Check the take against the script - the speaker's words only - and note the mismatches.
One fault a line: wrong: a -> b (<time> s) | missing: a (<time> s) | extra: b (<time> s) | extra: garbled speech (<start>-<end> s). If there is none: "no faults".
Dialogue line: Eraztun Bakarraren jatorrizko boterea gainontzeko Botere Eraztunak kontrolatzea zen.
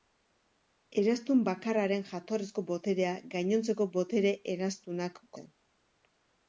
missing: kontrolatzea (5.2 s)